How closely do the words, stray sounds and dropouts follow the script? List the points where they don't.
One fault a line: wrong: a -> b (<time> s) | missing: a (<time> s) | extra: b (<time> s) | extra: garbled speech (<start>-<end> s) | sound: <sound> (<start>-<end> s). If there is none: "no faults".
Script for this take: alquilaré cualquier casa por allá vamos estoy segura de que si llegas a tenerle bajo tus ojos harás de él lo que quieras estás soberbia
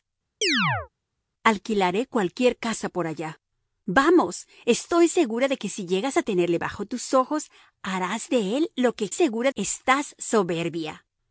sound: chirp (0.4-0.9 s)
wrong: quieras -> segura (9.1 s)